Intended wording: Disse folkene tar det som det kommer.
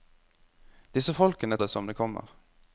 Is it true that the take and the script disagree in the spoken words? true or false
true